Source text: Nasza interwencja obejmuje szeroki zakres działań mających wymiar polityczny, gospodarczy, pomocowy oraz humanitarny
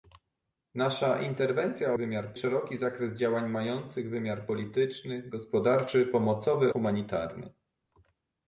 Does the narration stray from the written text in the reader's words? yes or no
yes